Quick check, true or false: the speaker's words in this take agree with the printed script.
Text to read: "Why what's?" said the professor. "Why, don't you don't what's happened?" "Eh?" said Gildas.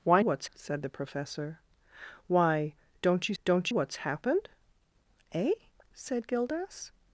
true